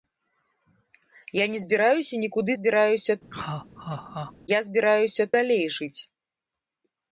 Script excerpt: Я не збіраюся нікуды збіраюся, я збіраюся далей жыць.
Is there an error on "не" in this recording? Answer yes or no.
no